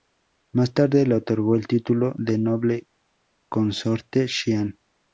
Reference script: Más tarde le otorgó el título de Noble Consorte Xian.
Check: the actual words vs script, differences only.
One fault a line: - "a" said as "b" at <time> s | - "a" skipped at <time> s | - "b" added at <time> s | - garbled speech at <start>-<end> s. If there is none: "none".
none